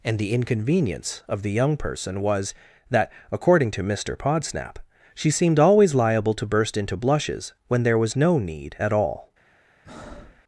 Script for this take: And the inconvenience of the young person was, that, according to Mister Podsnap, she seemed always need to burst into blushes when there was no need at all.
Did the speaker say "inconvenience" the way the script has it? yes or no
yes